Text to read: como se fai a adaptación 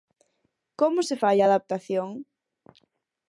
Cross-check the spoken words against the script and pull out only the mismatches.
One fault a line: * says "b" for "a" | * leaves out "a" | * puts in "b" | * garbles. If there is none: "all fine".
all fine